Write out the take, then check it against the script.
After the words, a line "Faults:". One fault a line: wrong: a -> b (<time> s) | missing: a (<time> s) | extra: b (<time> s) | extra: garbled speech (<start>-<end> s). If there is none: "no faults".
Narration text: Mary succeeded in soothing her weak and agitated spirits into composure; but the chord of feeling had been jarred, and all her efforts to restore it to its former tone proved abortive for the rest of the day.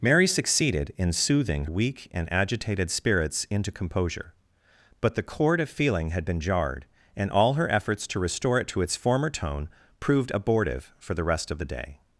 Mary succeeded in soothing weak and agitated spirits into composure; but the chord of feeling had been jarred, and all her efforts to restore it to its former tone proved abortive for the rest of the day.
Faults:
missing: her (1.6 s)